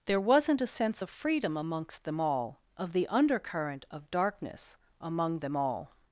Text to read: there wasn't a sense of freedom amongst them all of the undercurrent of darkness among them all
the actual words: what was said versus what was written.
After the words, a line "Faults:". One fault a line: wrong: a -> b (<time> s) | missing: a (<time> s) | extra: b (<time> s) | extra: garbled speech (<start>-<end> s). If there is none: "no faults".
there wasn't a sense of freedom amongst them all of the undercurrent of darkness among them all
Faults:
no faults